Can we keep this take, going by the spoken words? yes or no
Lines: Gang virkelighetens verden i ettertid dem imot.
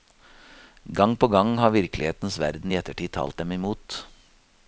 no